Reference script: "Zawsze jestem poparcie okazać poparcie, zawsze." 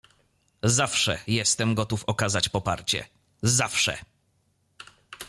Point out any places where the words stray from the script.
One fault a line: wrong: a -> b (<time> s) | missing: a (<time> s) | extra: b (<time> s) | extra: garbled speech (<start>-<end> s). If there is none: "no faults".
wrong: poparcie -> gotów (1.7 s)